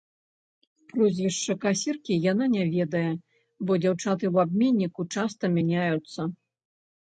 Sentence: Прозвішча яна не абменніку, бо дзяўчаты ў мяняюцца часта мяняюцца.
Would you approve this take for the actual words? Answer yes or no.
no